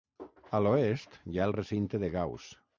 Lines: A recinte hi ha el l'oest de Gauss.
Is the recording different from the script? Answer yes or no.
yes